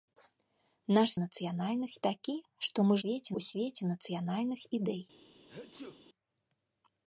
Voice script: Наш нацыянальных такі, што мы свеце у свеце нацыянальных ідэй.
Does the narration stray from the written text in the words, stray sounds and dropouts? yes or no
yes